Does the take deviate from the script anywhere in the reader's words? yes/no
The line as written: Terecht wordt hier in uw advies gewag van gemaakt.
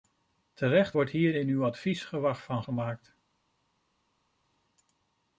no